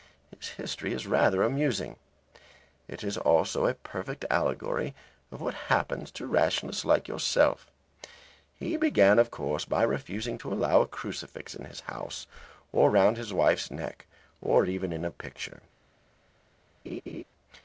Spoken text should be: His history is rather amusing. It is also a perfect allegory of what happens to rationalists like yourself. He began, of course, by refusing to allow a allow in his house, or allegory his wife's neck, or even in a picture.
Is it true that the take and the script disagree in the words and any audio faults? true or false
true